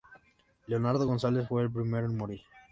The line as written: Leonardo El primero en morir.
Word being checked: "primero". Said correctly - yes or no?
yes